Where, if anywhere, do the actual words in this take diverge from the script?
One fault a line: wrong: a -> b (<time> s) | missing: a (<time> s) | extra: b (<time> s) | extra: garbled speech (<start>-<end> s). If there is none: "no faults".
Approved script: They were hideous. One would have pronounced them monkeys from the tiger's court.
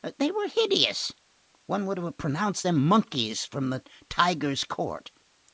no faults